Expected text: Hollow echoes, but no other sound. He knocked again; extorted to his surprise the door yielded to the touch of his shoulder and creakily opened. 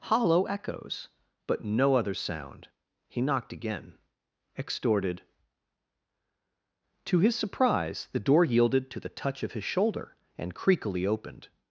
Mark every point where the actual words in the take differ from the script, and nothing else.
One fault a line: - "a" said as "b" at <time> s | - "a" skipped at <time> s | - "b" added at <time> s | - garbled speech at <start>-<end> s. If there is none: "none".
none